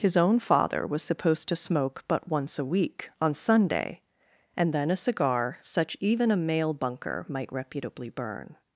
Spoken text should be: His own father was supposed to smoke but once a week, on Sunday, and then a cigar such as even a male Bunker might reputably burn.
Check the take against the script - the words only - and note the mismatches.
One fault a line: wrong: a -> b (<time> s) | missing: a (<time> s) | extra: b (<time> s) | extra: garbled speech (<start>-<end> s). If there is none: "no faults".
missing: as (6.0 s)